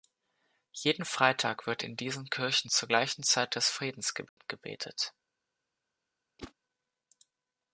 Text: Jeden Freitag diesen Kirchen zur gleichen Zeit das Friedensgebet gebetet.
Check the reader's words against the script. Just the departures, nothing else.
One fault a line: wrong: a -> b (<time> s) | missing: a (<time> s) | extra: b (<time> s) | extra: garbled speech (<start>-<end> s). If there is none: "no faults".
extra: wird in (1.7 s)